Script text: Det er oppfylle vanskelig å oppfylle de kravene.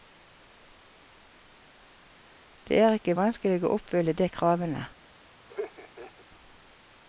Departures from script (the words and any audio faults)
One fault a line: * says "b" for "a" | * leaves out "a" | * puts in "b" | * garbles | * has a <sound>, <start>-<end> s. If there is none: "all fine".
* says "ikke" for "oppfylle"
* has a laugh, 5.5-6.3 s